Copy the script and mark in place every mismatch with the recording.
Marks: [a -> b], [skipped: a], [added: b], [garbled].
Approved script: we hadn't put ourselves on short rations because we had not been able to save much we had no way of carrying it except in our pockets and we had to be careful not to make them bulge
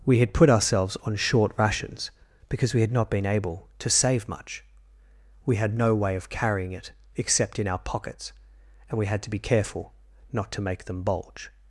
we [hadn't -> had] put ourselves on short rations because we had not been able to save much we had no way of carrying it except in our pockets and we had to be careful not to make them bulge